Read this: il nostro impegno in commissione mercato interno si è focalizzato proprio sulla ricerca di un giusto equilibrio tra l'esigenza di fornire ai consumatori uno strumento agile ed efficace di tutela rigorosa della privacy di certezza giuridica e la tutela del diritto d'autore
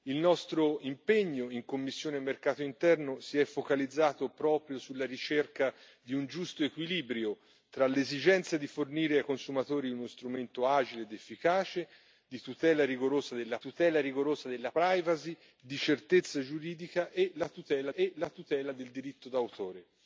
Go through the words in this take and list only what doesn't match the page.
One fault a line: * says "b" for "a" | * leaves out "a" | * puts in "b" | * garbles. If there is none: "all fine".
* puts in "tutela rigorosa della"
* puts in "e la tutela"